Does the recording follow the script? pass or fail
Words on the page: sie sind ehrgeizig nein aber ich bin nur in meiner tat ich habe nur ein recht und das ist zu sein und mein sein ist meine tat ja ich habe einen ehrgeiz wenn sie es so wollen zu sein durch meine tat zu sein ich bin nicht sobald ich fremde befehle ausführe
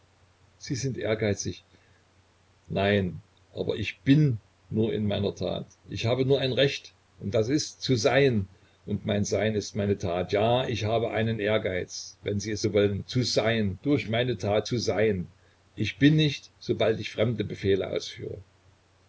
pass